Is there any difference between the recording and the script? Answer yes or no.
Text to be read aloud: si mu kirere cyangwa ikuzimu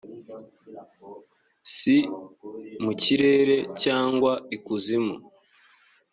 no